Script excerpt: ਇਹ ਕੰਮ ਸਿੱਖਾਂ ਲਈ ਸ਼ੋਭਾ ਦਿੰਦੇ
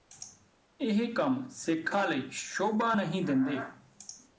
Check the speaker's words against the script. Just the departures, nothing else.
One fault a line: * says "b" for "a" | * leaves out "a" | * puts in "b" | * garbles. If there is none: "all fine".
* puts in "ਨਹੀਂ"